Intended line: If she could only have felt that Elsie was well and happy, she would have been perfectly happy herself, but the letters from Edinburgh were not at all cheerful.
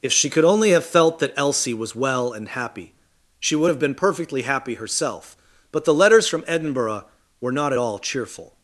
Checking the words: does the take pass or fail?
pass